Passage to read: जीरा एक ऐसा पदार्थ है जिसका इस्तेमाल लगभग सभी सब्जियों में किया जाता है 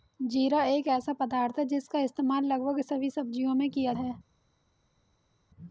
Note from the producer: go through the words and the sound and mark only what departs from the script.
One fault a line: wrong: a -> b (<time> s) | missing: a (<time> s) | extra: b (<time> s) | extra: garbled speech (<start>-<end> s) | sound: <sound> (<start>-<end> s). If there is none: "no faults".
missing: जाता (3.9 s)